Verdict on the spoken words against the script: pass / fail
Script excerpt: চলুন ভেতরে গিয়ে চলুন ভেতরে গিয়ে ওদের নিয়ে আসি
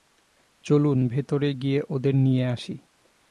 fail